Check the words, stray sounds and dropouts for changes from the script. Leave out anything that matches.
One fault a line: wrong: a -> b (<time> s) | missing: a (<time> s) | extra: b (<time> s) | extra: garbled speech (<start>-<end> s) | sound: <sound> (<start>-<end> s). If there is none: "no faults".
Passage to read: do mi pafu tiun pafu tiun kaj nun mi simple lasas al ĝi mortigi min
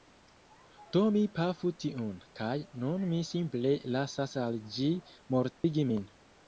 missing: pafu tiun (2.2 s)
sound: dropout (5.5-5.6 s)